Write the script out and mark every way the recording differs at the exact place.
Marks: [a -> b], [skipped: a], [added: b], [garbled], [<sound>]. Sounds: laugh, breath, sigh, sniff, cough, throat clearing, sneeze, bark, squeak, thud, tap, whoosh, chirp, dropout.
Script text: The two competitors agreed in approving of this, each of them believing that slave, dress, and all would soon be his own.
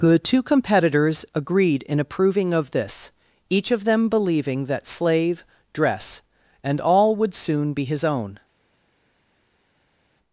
The two competitors agreed in approving of this, each of them believing that slave, dress, and all would soon be his own.